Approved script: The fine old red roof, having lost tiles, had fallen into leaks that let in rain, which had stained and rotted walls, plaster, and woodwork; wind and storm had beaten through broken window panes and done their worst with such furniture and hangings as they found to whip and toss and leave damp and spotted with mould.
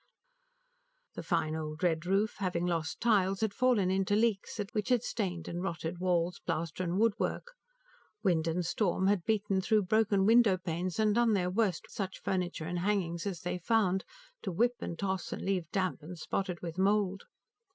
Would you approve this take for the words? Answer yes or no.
no